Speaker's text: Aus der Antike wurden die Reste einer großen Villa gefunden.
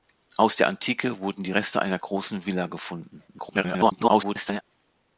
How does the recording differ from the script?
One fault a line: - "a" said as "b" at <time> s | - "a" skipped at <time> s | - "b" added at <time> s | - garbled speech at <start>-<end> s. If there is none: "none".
- garbled speech at 3.3-4.6 s